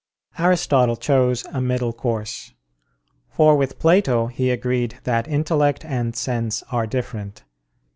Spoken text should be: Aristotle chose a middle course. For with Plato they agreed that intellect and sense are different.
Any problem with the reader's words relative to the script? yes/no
yes